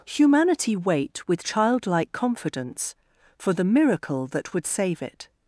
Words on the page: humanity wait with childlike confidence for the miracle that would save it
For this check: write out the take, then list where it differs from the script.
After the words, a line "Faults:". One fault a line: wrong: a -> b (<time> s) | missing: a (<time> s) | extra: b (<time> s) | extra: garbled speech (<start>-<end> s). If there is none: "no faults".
humanity wait with childlike confidence for the miracle that would save it
Faults:
no faults